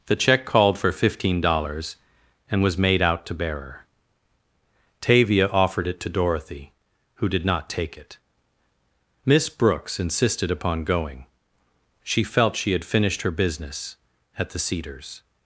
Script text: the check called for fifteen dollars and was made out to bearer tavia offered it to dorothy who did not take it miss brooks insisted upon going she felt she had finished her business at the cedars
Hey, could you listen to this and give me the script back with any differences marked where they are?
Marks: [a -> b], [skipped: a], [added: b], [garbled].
the check called for fifteen dollars and was made out to bearer tavia offered it to dorothy who did not take it miss brooks insisted upon going she felt she had finished her business at the cedars